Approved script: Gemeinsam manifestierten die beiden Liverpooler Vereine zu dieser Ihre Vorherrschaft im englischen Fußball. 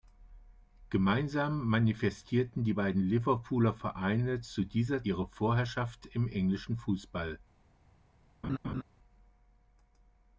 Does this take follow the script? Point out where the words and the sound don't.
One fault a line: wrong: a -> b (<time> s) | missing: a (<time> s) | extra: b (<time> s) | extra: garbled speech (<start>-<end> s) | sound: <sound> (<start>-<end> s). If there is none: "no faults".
sound: laugh (8.4-8.8 s)